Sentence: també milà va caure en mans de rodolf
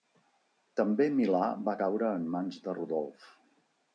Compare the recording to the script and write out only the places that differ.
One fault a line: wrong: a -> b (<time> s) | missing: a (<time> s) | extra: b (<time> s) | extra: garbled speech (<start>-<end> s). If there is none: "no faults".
no faults